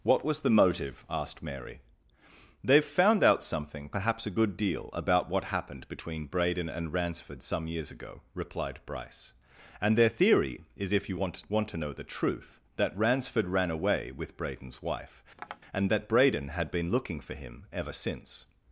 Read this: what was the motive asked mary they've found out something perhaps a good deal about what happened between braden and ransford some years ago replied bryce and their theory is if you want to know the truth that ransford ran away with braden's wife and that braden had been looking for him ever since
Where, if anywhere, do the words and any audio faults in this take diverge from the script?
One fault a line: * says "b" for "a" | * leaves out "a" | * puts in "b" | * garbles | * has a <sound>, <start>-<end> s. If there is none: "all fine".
* puts in "want"
* has a tap, 15.4-15.6 s